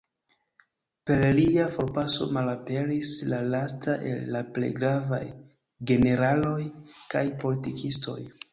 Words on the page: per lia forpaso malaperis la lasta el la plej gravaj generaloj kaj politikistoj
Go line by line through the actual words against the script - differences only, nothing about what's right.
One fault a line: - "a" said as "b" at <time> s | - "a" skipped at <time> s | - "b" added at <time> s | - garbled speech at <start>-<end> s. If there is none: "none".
none